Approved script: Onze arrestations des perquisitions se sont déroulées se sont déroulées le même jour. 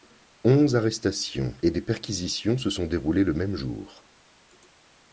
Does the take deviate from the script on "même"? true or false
false